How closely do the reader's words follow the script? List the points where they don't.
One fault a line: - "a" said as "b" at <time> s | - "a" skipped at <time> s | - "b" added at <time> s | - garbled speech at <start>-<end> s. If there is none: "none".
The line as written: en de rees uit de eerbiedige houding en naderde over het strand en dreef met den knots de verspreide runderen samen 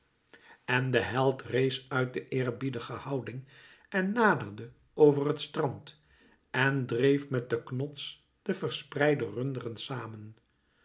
- "held" added at 1.0 s